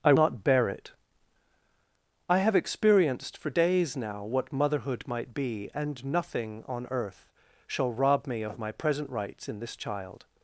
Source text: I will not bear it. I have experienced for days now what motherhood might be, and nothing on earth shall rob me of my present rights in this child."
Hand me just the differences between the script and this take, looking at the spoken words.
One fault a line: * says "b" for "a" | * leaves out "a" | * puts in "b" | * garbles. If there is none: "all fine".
* leaves out "will"